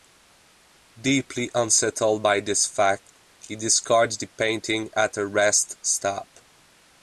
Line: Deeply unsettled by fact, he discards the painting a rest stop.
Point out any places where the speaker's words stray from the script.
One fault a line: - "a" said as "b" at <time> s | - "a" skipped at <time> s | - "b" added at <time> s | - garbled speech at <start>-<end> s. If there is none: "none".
- "this" added at 2.4 s
- "at" added at 5.0 s